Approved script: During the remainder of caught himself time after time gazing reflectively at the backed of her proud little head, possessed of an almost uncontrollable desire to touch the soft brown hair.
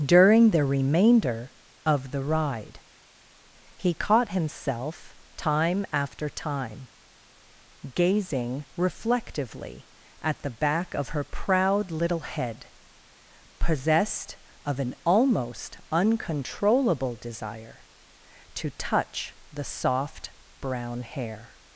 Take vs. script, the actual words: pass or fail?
fail